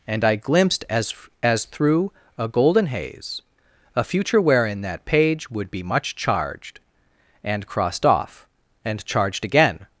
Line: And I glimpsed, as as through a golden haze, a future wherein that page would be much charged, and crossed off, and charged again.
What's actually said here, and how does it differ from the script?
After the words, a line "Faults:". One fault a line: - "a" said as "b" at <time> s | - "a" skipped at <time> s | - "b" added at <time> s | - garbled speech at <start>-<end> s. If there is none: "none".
And I glimpsed, as as through a golden haze, a future wherein that page would be much charged, and crossed off, and charged again.
Faults:
none